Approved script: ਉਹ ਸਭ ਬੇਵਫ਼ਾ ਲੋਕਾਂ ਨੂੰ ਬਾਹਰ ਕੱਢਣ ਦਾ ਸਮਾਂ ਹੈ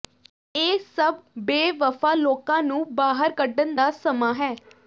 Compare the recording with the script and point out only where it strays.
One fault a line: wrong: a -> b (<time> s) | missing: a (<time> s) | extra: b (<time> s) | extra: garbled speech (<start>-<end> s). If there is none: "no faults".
wrong: ਉਹ -> ਇਹ (0.6 s)